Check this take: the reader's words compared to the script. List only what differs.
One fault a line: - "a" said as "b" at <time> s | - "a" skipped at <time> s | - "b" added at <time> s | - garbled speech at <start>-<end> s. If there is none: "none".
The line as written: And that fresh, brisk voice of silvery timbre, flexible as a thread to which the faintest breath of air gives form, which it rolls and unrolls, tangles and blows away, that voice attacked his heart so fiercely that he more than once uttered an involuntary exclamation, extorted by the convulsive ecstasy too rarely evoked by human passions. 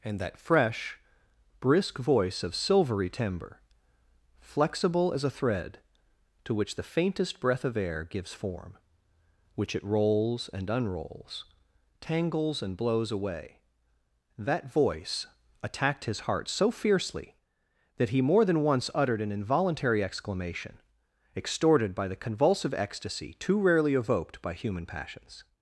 none